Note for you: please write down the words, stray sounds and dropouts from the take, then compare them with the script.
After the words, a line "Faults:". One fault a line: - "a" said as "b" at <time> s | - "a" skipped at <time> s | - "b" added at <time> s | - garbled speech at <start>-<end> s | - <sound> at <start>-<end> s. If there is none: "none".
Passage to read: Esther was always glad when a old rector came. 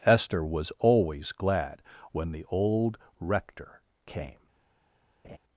Esther was always glad when the old rector came.
Faults:
- "a" said as "the" at 2.3 s
- laugh at 5.2-5.4 s